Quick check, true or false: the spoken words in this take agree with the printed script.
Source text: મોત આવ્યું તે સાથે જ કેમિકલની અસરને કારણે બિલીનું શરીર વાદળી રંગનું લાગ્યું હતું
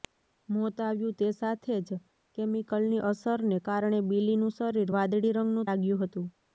true